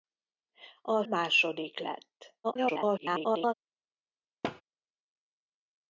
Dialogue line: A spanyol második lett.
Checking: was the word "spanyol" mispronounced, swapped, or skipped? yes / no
yes